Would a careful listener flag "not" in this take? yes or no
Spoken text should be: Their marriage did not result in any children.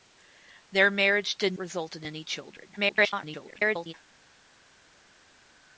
yes